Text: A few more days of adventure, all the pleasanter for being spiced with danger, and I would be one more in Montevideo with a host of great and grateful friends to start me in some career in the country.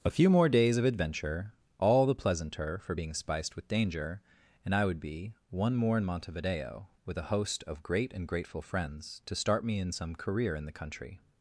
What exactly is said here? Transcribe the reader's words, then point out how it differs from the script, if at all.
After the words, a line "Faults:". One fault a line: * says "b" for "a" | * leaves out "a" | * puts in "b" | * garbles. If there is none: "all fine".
A few more days of adventure, all the pleasanter for being spiced with danger, and I would be one more in Montevideo with a host of great and grateful friends to start me in some career in the country.
Faults:
all fine